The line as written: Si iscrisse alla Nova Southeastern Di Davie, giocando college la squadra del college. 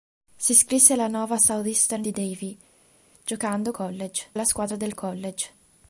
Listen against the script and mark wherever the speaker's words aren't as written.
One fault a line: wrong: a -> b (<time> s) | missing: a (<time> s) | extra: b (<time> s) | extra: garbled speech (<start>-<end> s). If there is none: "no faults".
no faults